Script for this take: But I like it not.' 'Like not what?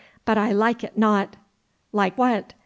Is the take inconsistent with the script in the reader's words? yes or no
yes